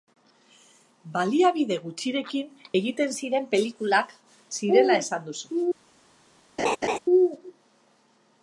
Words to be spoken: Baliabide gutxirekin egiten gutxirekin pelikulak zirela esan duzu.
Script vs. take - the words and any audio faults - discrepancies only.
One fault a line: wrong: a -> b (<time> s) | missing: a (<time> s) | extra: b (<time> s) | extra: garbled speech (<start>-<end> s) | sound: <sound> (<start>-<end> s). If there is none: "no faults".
wrong: gutxirekin -> ziren (3.2 s)
sound: laugh (6.6-7.0 s)